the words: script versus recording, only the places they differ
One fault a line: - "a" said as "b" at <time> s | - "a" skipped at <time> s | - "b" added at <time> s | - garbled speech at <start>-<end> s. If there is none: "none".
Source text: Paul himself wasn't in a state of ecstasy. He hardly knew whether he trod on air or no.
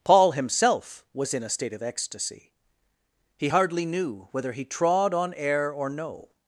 - "wasn't" said as "was" at 1.1 s